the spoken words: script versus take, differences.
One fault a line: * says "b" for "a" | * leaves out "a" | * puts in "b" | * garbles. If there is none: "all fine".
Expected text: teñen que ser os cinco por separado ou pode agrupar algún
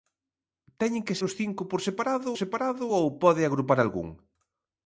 * leaves out "ser"
* puts in "separado"